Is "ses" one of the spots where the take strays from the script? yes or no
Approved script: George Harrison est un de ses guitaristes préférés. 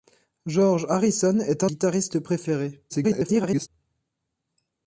yes